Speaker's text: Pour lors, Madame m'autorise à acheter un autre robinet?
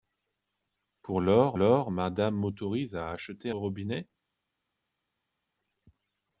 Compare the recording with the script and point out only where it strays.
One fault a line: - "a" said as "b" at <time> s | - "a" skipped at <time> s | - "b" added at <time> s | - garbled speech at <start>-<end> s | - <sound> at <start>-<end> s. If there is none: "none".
- "lors" added at 1.5 s
- "un autre" skipped at 3.5 s